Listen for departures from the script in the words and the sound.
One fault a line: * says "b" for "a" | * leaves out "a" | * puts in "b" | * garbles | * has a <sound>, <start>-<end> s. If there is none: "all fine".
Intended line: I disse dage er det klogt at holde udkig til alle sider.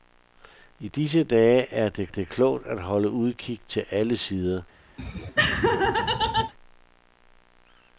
* puts in "det"
* has a laugh, 5.0-6.5 s